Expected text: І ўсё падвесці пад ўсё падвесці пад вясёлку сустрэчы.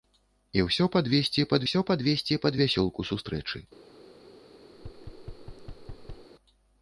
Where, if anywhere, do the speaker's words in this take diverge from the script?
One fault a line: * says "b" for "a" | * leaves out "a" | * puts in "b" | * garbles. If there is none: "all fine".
all fine